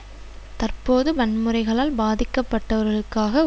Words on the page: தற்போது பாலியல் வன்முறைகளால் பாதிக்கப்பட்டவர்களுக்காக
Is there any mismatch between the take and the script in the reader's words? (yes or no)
yes